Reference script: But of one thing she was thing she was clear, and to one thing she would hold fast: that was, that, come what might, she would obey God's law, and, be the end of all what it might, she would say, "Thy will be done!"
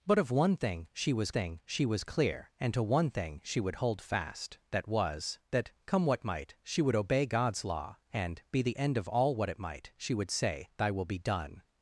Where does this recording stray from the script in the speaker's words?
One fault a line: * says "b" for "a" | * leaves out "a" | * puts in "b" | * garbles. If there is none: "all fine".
all fine